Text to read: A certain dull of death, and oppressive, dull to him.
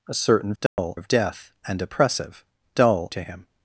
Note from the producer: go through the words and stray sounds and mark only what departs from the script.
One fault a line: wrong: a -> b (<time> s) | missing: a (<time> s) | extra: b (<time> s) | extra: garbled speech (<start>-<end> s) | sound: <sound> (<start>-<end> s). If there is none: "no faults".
sound: dropout (0.7-0.8 s)